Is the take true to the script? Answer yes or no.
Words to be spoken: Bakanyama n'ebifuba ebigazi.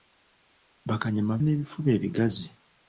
yes